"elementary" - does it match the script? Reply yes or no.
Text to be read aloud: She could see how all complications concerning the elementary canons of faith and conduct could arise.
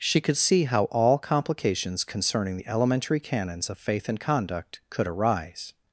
yes